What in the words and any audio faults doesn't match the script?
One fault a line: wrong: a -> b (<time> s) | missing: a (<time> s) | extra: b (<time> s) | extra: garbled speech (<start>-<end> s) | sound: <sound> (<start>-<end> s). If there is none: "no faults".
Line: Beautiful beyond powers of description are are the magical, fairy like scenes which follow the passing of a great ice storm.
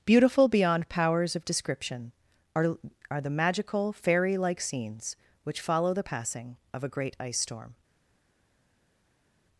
no faults